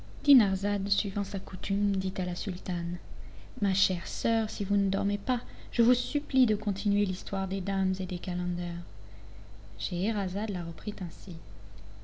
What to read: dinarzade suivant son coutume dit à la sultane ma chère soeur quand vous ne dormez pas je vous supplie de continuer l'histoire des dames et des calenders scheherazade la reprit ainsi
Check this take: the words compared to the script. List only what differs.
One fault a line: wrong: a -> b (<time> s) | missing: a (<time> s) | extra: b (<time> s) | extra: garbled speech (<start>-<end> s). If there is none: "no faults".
wrong: son -> sa (1.2 s)
wrong: quand -> si (4.5 s)